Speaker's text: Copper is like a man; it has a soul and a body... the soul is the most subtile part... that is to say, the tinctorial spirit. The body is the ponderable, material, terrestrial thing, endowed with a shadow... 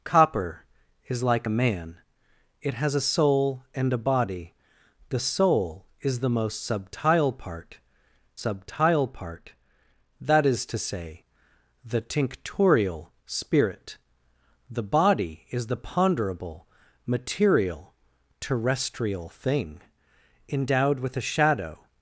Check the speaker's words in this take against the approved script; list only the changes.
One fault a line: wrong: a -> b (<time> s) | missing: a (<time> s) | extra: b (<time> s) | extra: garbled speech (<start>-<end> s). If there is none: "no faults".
extra: subtile part (8.4 s)